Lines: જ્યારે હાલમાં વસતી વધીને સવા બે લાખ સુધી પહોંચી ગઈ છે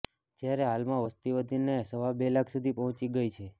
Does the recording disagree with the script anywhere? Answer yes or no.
no